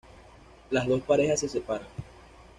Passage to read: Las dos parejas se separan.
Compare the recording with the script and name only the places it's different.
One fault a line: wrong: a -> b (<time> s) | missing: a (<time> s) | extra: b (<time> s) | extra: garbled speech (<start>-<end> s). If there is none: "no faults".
no faults